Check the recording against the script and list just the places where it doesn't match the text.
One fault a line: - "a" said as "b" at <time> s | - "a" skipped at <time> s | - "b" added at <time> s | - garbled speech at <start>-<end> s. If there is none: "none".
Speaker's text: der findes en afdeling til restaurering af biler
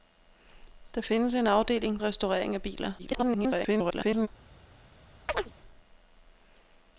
- "til" skipped at 2.0 s
- garbled speech at 3.0-4.3 s